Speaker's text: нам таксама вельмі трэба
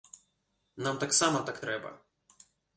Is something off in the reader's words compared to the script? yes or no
yes